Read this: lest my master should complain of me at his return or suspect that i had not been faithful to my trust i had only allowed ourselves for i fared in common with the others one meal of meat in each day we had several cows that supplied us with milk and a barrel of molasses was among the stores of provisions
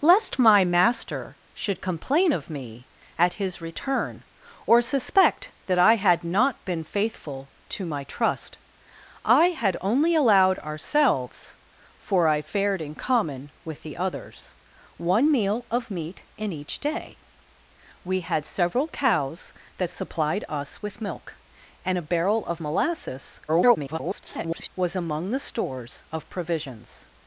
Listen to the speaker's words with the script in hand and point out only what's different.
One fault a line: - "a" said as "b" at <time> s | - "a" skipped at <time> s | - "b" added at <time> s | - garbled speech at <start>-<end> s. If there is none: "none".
- garbled speech at 23.5-24.7 s